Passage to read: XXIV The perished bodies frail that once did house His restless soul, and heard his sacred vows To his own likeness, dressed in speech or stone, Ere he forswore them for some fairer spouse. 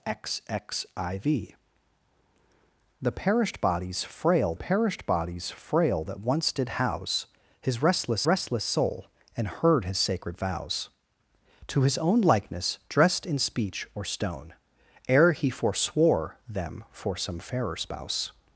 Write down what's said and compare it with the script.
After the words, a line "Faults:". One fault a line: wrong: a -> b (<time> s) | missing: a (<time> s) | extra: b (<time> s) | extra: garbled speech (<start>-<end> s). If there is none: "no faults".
XXIV The perished bodies frail perished bodies frail that once did house His restless restless soul, and heard his sacred vows To his own likeness, dressed in speech or stone, Ere he forswore them for some fairer spouse.
Faults:
extra: perished bodies frail (4.5 s)
extra: restless (8.3 s)